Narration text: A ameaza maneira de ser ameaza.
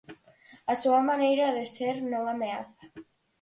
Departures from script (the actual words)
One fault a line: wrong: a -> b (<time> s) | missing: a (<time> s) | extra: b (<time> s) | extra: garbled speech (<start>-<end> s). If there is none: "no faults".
wrong: ameaza -> súa (0.8 s)
extra: non (2.1 s)